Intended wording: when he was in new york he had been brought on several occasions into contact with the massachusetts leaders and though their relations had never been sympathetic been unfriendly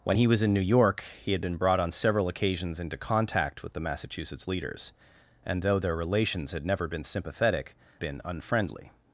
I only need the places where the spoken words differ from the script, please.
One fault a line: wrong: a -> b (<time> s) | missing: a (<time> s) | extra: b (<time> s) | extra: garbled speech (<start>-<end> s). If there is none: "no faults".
no faults